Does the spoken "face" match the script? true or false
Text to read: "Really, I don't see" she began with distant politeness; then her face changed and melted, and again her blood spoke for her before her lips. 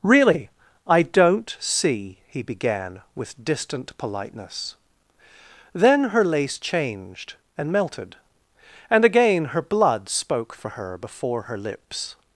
false